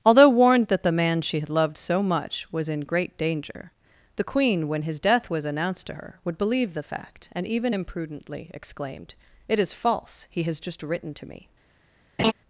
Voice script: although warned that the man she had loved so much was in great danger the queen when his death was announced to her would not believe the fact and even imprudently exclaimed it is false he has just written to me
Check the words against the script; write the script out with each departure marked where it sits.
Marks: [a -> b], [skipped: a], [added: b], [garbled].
although warned that the man she had loved so much was in great danger the queen when his death was announced to her would [skipped: not] believe the fact and even imprudently exclaimed it is false he has just written to me